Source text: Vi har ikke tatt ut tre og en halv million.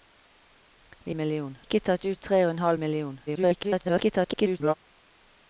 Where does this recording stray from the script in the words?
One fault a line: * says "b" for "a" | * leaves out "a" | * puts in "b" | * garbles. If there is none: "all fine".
* says "million" for "har"
* garbles